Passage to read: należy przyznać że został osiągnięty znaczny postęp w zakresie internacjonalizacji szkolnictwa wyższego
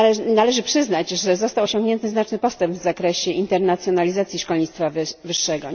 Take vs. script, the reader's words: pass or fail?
pass